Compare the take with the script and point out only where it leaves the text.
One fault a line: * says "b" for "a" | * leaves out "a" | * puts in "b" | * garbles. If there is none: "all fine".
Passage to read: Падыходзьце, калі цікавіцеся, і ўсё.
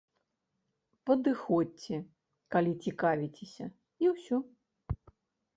all fine